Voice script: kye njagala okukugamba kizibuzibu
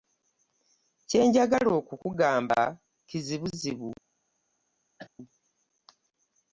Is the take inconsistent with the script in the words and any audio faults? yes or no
yes